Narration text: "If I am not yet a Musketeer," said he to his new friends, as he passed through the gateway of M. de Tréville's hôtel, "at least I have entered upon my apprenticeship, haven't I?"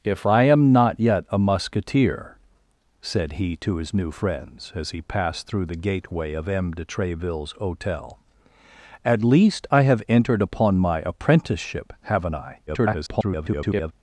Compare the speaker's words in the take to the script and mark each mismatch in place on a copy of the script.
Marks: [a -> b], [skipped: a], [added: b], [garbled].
"If I am not yet a Musketeer," said he to his new friends, as he passed through the gateway of M. de Tréville's hôtel, "at least I have entered upon my apprenticeship, haven't I?" [garbled]